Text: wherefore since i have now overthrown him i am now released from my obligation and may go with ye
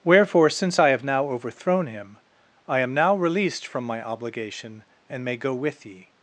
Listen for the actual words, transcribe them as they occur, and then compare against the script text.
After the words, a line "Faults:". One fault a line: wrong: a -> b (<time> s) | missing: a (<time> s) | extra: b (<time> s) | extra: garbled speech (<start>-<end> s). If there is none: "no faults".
wherefore since i have now overthrown him i am now released from my obligation and may go with ye
Faults:
no faults